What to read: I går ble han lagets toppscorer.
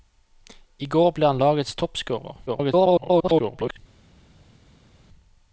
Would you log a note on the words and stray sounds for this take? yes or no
yes